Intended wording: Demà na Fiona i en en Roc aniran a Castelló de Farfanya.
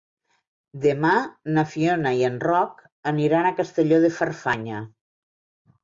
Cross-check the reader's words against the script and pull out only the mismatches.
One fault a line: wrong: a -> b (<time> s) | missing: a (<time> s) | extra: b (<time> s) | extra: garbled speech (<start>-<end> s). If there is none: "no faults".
missing: en (2.4 s)